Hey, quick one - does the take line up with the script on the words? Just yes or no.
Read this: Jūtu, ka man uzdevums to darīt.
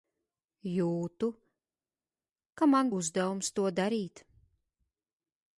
yes